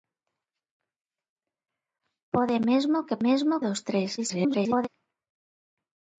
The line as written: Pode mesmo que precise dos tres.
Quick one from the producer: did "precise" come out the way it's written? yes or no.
no